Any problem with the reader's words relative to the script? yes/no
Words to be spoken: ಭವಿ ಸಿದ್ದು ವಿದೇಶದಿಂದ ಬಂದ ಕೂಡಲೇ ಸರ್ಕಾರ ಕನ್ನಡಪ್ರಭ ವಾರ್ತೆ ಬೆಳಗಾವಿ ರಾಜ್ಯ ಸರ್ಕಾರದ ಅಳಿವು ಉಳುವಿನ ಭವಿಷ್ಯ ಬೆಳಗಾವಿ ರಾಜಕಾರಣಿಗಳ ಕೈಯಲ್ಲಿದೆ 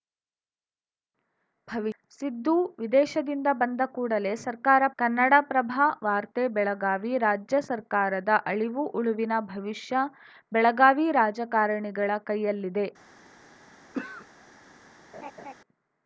no